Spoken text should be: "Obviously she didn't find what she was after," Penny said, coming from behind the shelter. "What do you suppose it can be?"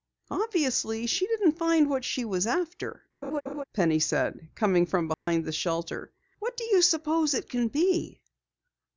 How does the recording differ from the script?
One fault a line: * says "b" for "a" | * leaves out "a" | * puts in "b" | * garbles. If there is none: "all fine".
all fine